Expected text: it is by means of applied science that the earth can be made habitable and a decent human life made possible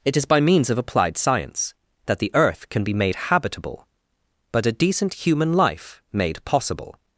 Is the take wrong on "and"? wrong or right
wrong